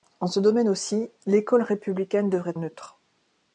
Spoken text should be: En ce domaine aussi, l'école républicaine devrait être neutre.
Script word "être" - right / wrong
wrong